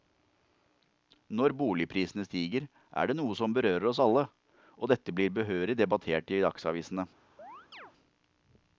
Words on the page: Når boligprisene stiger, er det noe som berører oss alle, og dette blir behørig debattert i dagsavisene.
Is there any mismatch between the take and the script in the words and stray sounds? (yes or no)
yes